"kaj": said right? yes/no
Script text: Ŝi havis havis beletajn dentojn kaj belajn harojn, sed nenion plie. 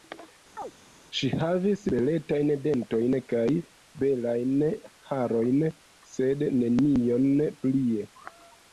yes